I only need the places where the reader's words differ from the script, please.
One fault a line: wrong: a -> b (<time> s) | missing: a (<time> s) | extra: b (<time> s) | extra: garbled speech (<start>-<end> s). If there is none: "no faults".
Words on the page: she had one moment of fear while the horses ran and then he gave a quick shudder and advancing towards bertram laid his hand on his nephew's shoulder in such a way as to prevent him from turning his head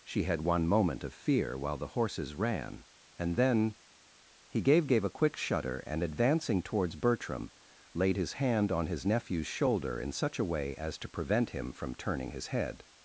extra: gave (4.9 s)